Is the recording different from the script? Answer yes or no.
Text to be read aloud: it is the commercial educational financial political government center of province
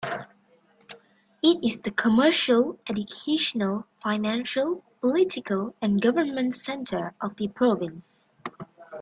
yes